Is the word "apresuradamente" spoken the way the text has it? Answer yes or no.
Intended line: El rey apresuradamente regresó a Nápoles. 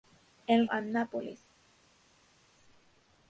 no